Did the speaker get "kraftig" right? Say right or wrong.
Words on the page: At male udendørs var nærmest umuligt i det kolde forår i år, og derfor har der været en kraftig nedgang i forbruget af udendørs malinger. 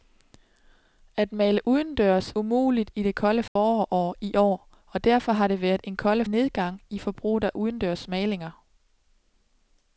wrong